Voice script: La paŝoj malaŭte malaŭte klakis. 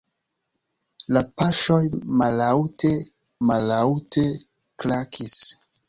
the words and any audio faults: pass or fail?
pass